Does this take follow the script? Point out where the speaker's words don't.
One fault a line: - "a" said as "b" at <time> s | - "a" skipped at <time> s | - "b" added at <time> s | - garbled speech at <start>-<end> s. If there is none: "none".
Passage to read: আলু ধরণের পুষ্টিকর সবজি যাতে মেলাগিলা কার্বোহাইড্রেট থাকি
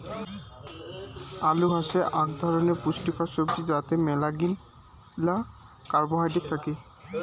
- "হসে আক" added at 1.7 s